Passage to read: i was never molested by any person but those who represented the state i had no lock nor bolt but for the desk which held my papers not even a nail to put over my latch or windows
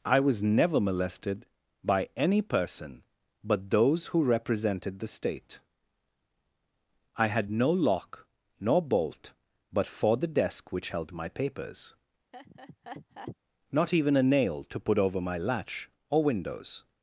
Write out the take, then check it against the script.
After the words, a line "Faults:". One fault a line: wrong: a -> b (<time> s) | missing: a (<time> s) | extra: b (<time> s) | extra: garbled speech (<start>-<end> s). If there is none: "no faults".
i was never molested by any person but those who represented the state i had no lock nor bolt but for the desk which held my papers not even a nail to put over my latch or windows
Faults:
no faults